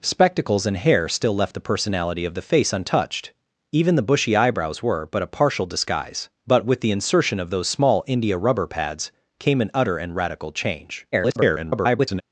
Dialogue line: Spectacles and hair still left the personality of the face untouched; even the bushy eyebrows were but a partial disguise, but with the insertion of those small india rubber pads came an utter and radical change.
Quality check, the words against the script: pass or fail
fail